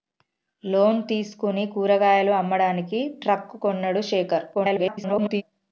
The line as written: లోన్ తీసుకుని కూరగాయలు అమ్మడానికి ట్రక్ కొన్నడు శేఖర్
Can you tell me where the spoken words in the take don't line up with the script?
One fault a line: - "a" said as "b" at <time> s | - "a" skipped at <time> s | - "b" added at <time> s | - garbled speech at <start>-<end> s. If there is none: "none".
- garbled speech at 4.5-5.4 s